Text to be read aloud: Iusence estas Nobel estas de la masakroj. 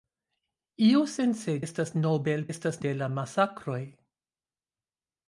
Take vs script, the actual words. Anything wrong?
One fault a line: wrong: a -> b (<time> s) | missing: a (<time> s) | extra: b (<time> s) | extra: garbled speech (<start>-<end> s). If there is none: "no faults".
no faults